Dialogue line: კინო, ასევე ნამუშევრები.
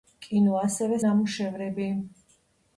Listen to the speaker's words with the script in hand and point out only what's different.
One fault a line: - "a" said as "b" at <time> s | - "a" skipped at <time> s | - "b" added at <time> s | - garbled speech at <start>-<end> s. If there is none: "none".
none